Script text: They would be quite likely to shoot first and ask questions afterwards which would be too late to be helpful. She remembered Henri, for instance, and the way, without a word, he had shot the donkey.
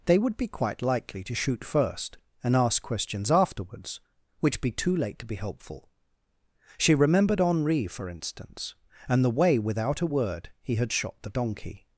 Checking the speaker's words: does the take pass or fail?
fail